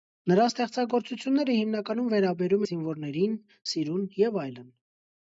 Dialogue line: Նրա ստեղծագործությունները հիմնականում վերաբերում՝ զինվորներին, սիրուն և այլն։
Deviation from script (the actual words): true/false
false